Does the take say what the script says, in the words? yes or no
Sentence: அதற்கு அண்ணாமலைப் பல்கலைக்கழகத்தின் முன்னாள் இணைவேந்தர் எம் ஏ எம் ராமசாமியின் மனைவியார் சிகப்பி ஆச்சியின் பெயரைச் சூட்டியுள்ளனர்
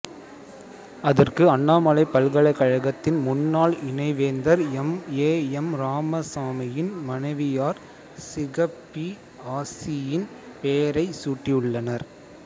yes